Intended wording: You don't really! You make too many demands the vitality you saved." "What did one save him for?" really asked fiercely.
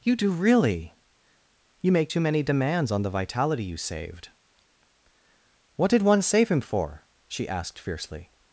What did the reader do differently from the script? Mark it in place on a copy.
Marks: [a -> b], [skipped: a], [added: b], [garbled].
You [don't -> do] really! You make too many demands [added: on] the vitality you saved." "What did one save him for?" [really -> she] asked fiercely.